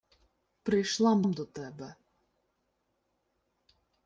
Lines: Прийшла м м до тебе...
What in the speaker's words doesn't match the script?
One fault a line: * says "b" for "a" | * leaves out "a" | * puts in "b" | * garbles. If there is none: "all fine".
all fine